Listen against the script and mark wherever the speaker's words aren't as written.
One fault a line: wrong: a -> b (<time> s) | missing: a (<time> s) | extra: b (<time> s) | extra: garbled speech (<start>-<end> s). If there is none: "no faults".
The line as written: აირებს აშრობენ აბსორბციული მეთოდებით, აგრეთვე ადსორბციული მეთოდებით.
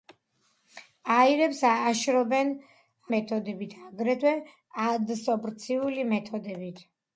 missing: აბსორბციული (2.5 s)